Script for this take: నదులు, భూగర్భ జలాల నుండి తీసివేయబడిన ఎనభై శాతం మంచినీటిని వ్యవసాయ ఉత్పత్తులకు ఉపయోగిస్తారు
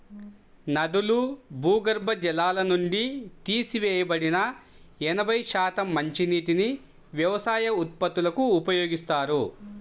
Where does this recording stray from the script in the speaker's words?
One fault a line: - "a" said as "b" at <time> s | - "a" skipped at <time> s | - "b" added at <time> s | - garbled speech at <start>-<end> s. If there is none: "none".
none